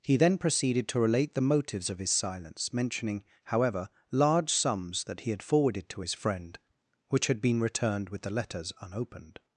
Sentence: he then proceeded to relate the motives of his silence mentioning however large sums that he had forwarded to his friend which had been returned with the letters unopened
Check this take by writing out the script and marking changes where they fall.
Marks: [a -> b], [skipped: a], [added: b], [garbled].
he then proceeded to relate the motives of his silence mentioning however large sums that he had forwarded to his friend which had been returned with the letters unopened